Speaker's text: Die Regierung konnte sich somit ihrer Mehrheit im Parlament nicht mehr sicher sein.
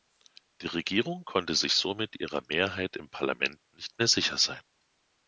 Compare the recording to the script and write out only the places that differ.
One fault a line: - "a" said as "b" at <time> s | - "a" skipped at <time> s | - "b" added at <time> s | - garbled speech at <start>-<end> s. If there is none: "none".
none